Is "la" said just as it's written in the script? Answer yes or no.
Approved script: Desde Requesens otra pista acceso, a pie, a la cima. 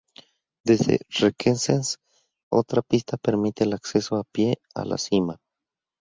yes